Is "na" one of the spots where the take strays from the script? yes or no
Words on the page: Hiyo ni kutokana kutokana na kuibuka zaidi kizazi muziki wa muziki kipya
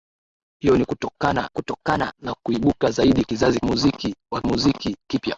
no